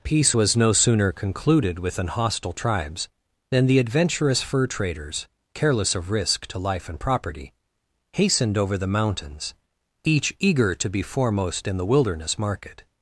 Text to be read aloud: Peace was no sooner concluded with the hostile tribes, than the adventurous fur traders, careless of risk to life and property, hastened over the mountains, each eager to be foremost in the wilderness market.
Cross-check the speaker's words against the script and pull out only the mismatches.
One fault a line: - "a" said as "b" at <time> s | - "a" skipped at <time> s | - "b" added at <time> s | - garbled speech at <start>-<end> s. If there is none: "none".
- "the" said as "an" at 2.0 s